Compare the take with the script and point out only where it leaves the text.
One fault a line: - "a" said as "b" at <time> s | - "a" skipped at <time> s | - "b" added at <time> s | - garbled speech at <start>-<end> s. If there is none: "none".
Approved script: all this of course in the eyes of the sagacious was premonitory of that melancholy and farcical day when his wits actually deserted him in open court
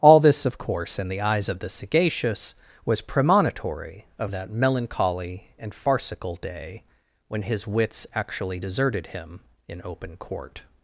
none